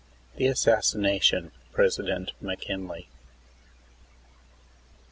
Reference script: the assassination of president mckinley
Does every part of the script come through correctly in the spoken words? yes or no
no